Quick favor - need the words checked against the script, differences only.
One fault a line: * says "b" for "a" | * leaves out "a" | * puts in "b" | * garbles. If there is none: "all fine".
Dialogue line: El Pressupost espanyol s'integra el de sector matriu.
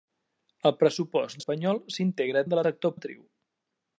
all fine